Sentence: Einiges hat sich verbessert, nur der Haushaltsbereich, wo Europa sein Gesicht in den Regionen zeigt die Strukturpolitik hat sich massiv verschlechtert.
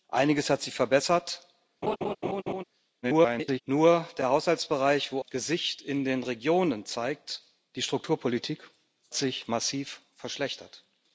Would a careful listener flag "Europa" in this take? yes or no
yes